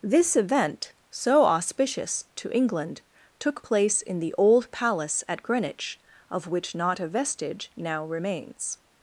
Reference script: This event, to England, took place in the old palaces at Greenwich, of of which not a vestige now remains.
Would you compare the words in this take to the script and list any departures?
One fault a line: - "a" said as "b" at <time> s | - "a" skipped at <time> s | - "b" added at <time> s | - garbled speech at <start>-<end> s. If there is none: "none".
- "so auspicious" added at 1.1 s
- "palaces" said as "palace" at 4.7 s
- "of" skipped at 6.5 s